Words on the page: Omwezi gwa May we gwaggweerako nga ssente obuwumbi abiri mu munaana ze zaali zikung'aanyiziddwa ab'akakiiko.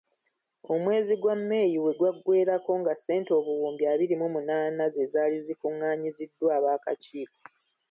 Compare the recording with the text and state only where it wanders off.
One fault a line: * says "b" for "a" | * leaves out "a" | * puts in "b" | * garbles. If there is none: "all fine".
all fine